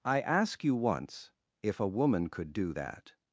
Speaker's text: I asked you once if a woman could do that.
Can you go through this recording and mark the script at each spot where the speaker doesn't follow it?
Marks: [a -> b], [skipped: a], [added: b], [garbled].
I [asked -> ask] you once if a woman could do that.